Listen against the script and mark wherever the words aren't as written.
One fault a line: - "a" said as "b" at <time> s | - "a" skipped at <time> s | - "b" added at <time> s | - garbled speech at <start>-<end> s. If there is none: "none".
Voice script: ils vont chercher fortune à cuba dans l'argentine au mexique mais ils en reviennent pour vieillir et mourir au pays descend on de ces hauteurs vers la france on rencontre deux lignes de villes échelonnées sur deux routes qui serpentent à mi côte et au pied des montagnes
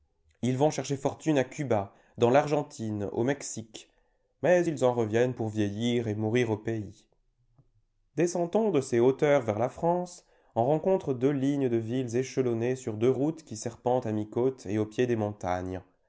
none